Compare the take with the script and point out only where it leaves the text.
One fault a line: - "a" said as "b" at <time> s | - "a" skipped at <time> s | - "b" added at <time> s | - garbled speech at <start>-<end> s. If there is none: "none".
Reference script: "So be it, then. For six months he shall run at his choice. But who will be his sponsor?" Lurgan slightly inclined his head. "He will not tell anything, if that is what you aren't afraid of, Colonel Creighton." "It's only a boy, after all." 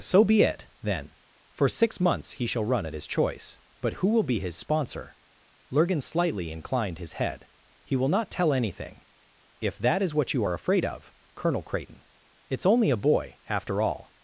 - "aren't" said as "are" at 10.4 s